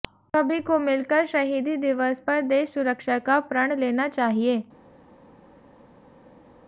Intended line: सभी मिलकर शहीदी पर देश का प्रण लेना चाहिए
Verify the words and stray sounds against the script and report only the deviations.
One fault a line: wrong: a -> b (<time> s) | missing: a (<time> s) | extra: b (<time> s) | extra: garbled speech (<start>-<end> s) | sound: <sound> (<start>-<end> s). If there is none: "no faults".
extra: को (0.6 s)
extra: दिवस (1.8 s)
extra: सुरक्षा (2.7 s)